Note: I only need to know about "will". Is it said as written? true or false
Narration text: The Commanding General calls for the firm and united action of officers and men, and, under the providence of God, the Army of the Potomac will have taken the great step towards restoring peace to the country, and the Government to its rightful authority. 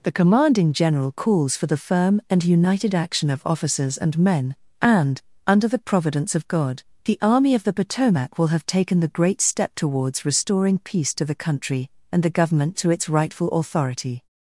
true